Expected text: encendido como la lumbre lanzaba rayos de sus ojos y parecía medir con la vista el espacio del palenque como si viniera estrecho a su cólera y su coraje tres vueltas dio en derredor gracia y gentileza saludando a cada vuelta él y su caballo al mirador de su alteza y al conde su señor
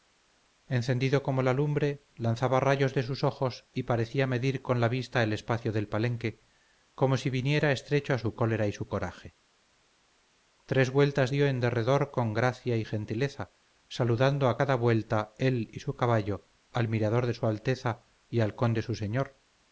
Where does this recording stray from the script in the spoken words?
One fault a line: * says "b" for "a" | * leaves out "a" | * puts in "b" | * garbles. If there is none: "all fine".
* puts in "con"